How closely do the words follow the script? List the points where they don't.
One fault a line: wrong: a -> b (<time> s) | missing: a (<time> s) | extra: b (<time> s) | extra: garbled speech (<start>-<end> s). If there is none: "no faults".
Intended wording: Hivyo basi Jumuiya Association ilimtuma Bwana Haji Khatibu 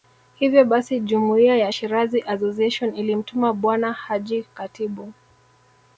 extra: ya Shirazi (1.6 s)